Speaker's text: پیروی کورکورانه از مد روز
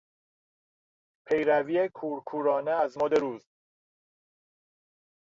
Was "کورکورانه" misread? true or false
false